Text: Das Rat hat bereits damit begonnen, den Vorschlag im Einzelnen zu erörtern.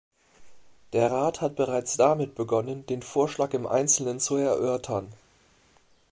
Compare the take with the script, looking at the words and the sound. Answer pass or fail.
fail